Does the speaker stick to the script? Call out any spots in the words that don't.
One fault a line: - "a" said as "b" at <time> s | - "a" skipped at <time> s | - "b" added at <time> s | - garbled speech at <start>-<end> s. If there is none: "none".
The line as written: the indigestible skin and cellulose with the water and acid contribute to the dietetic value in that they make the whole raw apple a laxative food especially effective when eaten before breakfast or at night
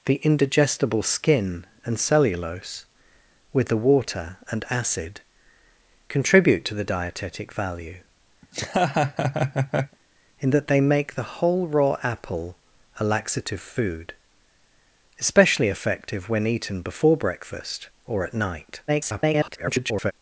- garbled speech at 18.9-20.1 s